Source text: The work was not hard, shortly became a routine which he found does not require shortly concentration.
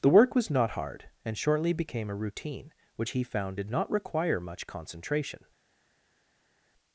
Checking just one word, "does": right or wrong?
wrong